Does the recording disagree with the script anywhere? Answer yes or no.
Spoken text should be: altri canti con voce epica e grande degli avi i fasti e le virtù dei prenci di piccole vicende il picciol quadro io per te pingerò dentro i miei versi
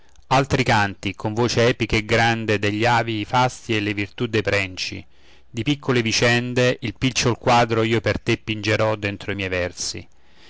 no